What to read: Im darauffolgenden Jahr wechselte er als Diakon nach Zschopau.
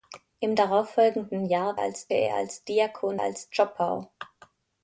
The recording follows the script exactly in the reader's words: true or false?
false